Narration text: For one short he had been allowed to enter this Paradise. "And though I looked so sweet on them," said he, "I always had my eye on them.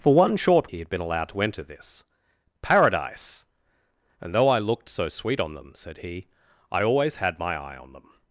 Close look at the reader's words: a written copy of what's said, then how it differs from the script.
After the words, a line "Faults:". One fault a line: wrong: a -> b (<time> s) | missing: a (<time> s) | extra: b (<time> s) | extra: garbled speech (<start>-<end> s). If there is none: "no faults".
For one short he had been allowed to enter this Paradise. "And though I looked so sweet on them," said he, "I always had my eye on them.
Faults:
no faults